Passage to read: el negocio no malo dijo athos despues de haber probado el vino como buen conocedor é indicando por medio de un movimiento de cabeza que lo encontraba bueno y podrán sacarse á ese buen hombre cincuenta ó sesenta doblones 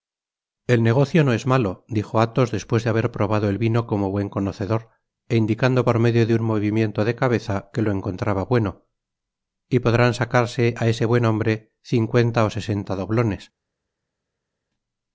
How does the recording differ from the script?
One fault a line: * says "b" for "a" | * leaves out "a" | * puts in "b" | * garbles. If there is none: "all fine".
* puts in "es"